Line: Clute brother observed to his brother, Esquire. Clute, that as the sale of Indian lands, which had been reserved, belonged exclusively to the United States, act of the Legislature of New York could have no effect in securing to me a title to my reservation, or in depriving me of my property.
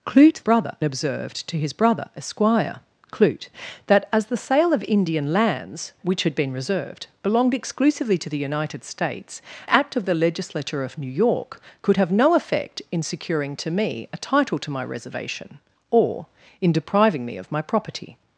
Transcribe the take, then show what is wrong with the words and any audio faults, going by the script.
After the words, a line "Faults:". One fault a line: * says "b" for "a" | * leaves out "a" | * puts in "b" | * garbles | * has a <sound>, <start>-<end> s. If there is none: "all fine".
Clute brother observed to his brother, Esquire. Clute, that as the sale of Indian lands, which had been reserved, belonged exclusively to the United States, act of the Legislature of New York could have no effect in securing to me a title to my reservation, or in depriving me of my property.
Faults:
all fine